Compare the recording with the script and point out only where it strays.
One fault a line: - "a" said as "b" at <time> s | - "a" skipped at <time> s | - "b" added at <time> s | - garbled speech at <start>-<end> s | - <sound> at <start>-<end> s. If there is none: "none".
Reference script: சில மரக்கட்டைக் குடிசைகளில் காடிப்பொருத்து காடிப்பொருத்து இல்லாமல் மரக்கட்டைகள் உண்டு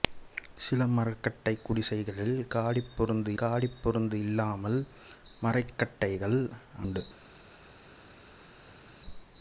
none